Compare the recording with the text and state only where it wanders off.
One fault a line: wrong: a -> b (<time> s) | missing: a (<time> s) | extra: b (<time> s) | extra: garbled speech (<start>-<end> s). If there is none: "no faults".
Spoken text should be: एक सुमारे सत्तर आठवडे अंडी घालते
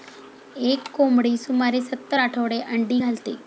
extra: कोंबडी (0.9 s)